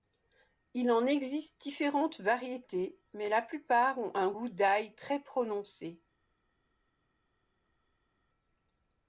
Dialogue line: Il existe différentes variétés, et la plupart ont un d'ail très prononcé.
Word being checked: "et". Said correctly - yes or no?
no